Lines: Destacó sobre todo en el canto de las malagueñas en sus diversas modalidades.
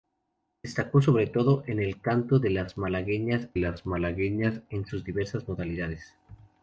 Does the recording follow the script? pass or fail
fail